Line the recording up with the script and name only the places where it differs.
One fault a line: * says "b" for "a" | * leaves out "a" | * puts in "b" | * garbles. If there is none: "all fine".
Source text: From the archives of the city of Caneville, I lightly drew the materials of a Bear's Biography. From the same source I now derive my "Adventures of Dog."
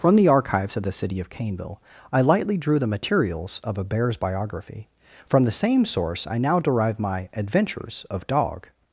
all fine